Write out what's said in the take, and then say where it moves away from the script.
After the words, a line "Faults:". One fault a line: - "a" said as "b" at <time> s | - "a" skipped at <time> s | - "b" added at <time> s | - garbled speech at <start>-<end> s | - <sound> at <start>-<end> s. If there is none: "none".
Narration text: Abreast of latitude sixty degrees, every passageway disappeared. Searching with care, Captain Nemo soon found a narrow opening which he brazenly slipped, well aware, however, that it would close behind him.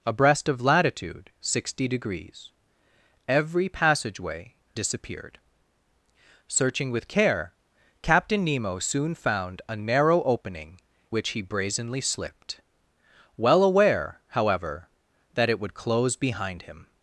Abreast of latitude sixty degrees, every passageway disappeared. Searching with care, Captain Nemo soon found a narrow opening which he brazenly slipped, well aware, however, that it would close behind him.
Faults:
none